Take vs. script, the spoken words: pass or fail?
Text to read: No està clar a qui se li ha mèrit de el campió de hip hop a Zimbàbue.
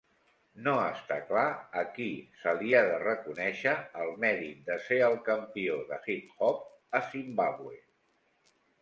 fail